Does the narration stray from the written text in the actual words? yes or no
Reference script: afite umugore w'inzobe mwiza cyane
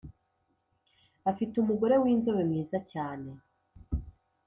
no